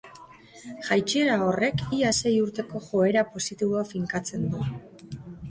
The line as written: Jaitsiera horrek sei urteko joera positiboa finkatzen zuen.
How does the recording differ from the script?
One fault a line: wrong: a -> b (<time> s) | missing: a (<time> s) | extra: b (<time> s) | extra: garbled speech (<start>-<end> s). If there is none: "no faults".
extra: ia (2.0 s)
wrong: zuen -> du (4.5 s)